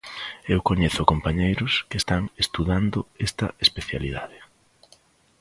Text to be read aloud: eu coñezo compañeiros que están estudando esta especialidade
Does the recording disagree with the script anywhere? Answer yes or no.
no